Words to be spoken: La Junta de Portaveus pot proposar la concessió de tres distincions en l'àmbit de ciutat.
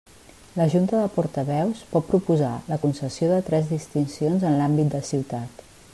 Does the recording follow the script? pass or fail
pass